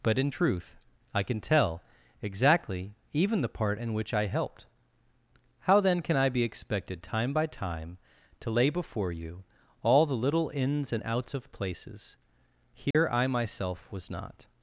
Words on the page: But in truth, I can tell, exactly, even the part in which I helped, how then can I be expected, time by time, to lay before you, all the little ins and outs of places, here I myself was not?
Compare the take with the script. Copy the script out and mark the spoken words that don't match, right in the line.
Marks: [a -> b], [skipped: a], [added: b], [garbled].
But in truth, I can tell, exactly, even the part in which I helped, how then can I be expected, time by time, to lay before you, all the little ins and outs of places, here I myself was not?